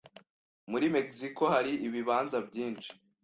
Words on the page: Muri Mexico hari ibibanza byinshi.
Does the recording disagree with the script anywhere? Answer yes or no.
no